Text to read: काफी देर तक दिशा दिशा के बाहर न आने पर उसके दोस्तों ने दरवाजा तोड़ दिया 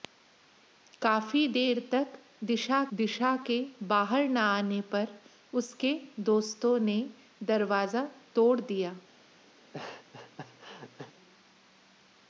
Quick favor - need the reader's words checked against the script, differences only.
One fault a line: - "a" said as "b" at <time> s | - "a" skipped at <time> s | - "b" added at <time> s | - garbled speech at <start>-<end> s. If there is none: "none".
none